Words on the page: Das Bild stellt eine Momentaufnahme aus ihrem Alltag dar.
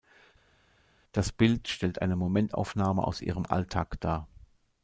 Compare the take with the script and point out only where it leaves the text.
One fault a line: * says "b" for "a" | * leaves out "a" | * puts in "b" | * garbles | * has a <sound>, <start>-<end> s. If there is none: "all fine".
all fine